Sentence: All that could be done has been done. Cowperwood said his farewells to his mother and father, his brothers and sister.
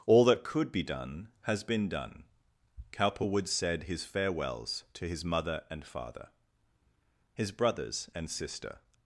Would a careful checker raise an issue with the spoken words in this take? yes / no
no